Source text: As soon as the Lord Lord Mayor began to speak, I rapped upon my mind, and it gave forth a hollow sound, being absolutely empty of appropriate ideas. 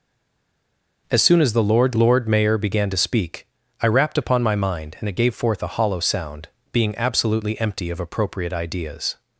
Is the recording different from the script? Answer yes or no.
no